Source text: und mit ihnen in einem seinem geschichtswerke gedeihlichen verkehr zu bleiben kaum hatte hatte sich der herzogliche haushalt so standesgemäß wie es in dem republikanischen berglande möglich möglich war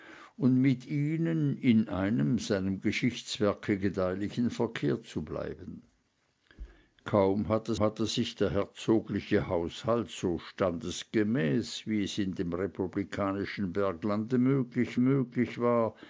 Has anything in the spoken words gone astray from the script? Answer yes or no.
no